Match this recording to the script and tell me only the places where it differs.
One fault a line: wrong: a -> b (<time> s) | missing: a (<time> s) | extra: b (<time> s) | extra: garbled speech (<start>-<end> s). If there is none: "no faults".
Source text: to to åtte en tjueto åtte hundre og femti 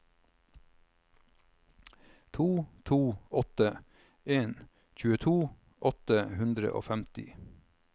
no faults